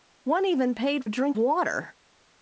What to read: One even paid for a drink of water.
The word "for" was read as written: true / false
false